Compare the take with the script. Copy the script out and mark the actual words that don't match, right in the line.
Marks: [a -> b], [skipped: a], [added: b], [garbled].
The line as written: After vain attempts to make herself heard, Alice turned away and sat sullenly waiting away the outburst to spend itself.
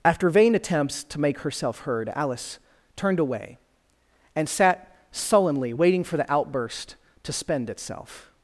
After vain attempts to make herself heard, Alice turned away and sat sullenly waiting [away -> for] the outburst to spend itself.